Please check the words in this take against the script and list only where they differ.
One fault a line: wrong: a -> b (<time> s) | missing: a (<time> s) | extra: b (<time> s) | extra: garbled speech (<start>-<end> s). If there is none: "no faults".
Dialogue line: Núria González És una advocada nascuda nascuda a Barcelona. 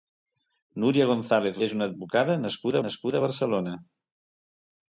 no faults